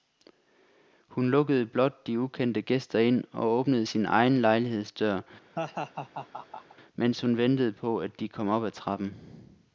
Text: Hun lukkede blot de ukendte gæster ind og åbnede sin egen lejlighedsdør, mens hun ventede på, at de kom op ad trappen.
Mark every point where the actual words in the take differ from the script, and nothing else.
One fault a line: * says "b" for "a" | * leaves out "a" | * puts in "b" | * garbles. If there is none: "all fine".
all fine